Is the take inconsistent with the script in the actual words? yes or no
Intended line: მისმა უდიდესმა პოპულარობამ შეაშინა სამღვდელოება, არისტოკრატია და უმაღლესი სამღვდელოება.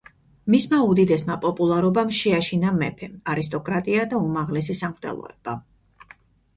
yes